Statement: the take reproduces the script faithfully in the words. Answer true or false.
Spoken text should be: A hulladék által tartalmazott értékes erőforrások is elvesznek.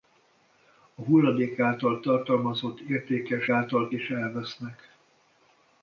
false